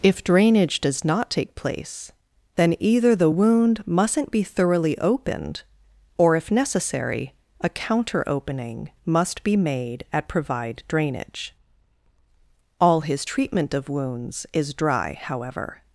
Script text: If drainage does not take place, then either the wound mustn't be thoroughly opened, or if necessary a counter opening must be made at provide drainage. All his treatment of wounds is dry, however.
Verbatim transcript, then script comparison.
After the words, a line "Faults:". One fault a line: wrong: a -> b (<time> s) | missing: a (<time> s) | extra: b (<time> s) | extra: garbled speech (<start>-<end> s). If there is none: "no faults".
If drainage does not take place, then either the wound mustn't be thoroughly opened, or if necessary a counter opening must be made at provide drainage. All his treatment of wounds is dry, however.
Faults:
no faults